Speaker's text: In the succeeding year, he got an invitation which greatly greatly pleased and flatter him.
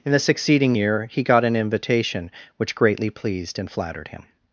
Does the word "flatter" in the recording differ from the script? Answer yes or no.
yes